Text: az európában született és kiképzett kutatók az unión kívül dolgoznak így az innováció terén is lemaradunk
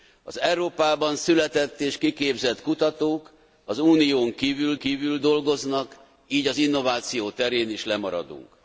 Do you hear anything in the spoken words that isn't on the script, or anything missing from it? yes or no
yes